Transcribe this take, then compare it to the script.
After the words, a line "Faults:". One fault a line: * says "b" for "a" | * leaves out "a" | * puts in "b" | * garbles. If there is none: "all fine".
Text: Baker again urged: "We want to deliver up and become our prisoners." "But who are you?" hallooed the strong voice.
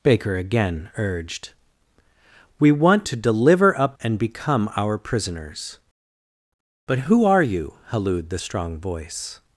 Baker again urged: "We want to deliver up and become our prisoners." "But who are you?" hallooed the strong voice.
Faults:
all fine